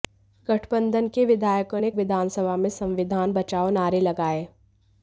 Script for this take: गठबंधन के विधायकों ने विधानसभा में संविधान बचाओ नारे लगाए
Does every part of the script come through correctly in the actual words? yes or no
yes